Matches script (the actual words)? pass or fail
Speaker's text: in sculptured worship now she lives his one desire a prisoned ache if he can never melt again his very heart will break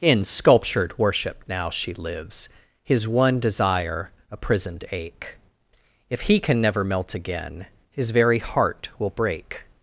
pass